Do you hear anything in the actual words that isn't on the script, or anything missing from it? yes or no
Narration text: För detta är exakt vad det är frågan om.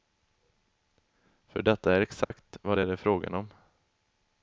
no